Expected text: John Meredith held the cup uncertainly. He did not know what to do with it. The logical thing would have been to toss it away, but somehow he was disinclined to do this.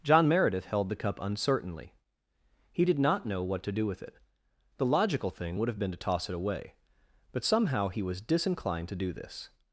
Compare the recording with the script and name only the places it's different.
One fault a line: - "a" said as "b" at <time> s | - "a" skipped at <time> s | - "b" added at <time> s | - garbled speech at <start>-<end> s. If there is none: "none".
none